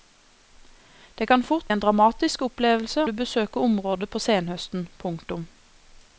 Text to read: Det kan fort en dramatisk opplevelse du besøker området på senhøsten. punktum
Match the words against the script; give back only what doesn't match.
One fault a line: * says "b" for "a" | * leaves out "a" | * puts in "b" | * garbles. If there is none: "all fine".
all fine